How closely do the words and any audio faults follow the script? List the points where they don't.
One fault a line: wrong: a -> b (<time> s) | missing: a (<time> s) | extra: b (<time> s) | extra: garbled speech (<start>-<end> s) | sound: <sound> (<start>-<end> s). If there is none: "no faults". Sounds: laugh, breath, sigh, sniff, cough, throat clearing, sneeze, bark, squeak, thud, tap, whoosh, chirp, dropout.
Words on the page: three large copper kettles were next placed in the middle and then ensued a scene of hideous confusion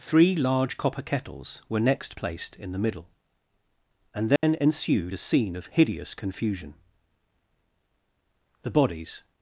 sound: dropout (4.4-4.4 s)
extra: the bodies (8.6 s)